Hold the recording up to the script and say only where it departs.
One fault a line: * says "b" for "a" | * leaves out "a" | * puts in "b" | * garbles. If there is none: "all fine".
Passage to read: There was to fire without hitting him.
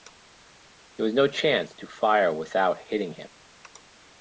* puts in "no chance"